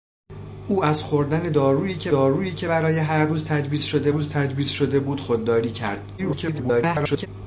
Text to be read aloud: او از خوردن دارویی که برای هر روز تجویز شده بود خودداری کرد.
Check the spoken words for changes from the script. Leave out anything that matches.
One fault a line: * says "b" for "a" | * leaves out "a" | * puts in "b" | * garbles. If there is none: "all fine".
* puts in "دارویی که"
* puts in "روز تجویز شده"
* garbles